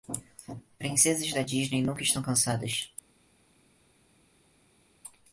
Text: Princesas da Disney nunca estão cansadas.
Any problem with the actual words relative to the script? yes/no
no